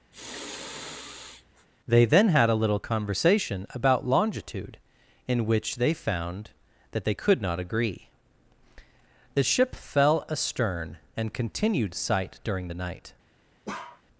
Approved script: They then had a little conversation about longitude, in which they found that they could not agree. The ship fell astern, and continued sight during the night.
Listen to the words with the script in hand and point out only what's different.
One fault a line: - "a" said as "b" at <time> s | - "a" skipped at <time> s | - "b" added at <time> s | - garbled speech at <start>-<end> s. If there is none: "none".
none